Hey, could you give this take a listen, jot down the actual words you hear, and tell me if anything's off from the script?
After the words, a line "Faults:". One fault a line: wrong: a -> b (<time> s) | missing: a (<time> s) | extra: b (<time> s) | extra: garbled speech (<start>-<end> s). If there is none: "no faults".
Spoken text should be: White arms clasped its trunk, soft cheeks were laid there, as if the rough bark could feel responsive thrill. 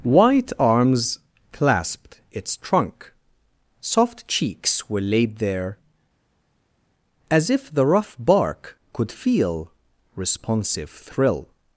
White arms clasped its trunk, soft cheeks were laid there, as if the rough bark could feel responsive thrill.
Faults:
no faults